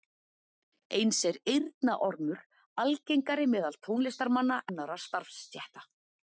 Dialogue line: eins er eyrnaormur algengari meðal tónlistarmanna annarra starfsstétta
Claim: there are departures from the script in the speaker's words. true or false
false